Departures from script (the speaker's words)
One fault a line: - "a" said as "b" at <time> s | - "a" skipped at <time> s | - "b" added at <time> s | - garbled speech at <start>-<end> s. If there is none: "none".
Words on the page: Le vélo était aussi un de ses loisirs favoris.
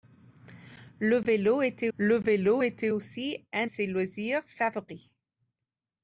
- "le vélo était" added at 1.9 s
- "de" skipped at 3.6 s